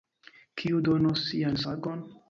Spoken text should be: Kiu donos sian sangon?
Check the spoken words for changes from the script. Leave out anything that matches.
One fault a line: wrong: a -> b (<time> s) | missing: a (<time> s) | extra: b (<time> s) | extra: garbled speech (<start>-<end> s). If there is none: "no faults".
no faults